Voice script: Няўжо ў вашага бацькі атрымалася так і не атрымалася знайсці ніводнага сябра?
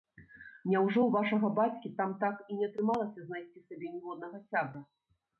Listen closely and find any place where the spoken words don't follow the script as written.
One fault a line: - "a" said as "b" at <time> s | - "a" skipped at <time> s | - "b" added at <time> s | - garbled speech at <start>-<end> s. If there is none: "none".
- "атрымалася" said as "там" at 2.0 s
- "сабе" added at 3.6 s